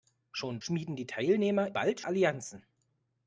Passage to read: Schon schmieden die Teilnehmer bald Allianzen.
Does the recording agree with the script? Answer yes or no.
yes